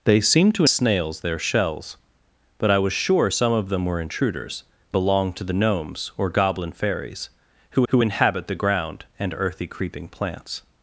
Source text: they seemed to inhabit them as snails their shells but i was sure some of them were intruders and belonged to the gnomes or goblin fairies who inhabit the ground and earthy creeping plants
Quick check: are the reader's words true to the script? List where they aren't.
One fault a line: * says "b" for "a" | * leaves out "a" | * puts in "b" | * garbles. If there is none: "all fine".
* leaves out "inhabit them as"
* leaves out "and"
* puts in "who"